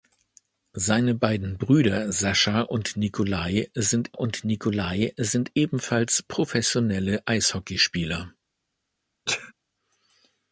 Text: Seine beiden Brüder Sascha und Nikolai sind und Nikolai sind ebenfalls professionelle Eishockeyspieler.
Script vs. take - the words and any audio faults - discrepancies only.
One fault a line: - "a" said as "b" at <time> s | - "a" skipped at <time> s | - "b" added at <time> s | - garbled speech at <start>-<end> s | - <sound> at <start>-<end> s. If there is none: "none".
- sneeze at 9.3-9.5 s